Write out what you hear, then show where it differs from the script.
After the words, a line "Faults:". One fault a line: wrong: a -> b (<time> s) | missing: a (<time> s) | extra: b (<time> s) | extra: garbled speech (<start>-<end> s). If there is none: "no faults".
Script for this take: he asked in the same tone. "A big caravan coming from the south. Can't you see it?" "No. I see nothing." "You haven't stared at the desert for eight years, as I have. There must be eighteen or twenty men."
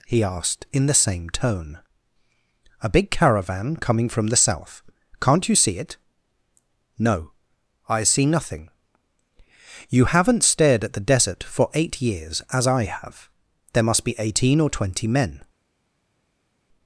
he asked in the same tone. "A big caravan coming from the south. Can't you see it?" "No. I see nothing." "You haven't stared at the desert for eight years, as I have. There must be eighteen or twenty men."
Faults:
no faults